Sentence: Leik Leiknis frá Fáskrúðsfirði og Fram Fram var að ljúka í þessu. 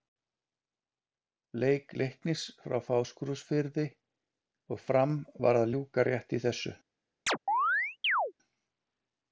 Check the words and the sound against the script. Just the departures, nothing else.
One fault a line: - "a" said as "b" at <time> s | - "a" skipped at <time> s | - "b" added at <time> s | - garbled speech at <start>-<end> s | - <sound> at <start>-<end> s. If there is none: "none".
- "Fram" skipped at 5.2 s
- "rétt" added at 6.1 s
- chirp at 7.3-8.3 s